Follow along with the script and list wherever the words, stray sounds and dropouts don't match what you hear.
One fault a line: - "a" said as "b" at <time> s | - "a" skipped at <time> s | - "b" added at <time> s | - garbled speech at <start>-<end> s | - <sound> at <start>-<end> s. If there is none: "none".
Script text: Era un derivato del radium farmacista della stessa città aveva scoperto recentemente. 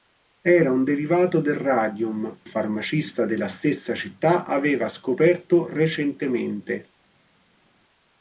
none